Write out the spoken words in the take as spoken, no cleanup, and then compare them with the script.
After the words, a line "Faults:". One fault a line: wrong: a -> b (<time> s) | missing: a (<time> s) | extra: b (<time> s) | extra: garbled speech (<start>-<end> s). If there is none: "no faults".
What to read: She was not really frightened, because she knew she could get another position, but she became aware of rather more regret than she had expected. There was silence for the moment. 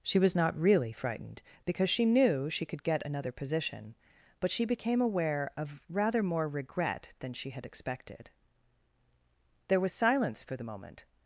She was not really frightened, because she knew she could get another position, but she became aware of rather more regret than she had expected. There was silence for the moment.
Faults:
no faults